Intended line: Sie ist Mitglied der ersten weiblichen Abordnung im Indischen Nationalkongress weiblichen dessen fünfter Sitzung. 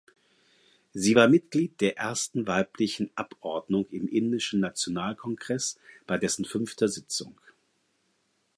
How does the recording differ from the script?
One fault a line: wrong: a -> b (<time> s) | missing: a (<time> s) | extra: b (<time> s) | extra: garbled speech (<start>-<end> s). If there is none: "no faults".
wrong: ist -> war (1.1 s)
wrong: weiblichen -> bei (6.0 s)